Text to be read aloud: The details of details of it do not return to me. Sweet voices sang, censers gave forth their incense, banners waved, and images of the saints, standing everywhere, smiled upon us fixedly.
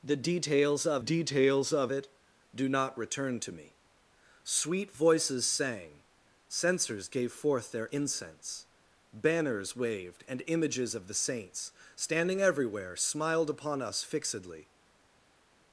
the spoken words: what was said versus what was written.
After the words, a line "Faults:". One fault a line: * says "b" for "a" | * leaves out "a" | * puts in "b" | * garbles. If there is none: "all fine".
The details of details of it do not return to me. Sweet voices sang, censers gave forth their incense, banners waved, and images of the saints, standing everywhere, smiled upon us fixedly.
Faults:
all fine